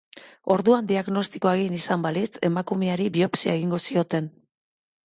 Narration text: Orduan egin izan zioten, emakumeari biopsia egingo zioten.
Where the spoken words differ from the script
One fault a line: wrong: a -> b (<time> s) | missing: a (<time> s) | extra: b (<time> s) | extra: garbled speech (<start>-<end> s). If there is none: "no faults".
extra: diagnostikoa (0.9 s)
wrong: zioten -> balitz (2.1 s)